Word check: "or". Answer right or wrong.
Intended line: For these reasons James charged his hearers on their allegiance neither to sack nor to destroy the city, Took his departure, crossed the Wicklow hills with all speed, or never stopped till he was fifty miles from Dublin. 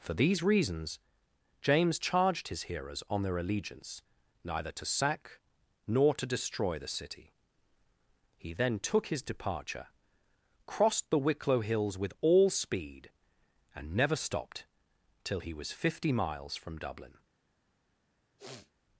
wrong